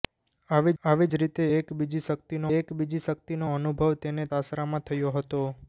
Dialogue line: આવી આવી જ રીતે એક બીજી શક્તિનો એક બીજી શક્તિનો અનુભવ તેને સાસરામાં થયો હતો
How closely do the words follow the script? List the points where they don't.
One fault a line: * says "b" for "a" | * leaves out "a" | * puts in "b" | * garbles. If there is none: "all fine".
all fine